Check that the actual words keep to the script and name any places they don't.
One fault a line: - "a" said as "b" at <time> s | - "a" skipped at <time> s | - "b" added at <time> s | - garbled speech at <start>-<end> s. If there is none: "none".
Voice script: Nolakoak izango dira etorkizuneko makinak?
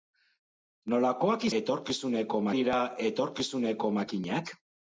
- "izango" said as "etorkizuneko" at 1.6 s